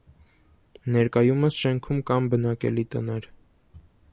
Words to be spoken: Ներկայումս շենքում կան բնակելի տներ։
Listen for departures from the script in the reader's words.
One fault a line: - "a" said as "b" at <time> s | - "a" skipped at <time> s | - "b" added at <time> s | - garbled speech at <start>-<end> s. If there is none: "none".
none